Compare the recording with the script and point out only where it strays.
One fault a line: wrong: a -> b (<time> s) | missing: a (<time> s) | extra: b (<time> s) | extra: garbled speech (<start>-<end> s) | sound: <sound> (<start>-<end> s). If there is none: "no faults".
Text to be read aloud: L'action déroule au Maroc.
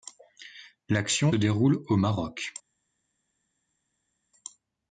no faults